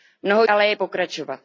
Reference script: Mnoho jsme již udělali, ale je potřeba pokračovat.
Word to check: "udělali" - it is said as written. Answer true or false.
false